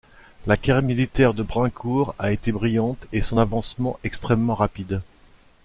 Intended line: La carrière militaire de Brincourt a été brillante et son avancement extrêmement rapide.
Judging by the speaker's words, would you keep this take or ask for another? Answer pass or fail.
pass